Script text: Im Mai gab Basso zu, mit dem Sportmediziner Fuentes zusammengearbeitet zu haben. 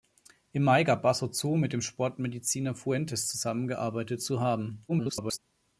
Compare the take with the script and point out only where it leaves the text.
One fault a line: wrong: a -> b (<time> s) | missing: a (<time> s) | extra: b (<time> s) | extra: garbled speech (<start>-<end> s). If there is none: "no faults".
extra: garbled speech (4.9-5.4 s)